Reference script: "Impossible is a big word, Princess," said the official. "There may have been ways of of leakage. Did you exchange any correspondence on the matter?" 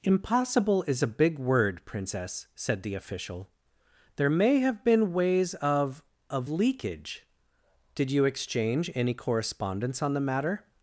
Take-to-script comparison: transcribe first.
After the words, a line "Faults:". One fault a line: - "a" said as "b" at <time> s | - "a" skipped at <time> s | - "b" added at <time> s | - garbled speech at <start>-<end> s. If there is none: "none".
"Impossible is a big word, Princess," said the official. "There may have been ways of of leakage. Did you exchange any correspondence on the matter?"
Faults:
none